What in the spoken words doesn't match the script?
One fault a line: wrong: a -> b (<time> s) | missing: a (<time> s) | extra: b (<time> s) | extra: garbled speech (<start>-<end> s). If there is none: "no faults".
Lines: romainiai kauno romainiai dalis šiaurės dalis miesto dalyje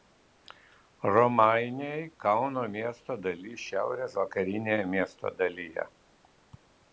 wrong: romainiai -> miesto (2.8 s)
wrong: dalis -> vakarinėje (4.2 s)